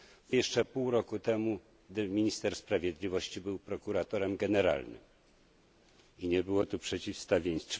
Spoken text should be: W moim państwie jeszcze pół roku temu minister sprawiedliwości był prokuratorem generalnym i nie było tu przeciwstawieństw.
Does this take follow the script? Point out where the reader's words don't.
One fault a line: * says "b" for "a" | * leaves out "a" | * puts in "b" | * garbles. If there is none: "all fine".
* leaves out "moim państwie"